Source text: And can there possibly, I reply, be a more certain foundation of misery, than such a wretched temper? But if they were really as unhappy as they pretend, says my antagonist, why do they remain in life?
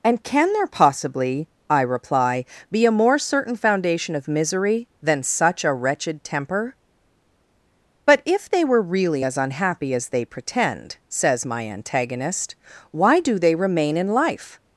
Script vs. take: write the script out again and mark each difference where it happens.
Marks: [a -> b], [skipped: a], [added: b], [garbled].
And can there possibly, I reply, be a more certain foundation of misery, than such a wretched temper? But if they were really as unhappy as they pretend, says my antagonist, why do they remain in life?